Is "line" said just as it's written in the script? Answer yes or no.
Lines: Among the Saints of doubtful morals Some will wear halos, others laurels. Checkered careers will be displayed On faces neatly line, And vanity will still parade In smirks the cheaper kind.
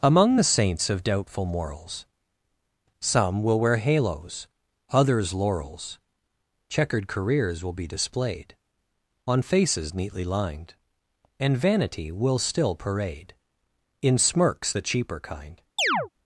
no